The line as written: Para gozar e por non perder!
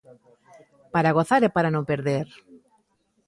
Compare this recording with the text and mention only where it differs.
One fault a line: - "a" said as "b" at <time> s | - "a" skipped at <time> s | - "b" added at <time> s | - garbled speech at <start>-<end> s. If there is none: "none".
- "por" said as "para" at 1.6 s